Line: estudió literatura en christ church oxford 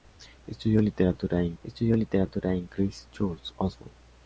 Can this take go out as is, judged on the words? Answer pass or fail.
fail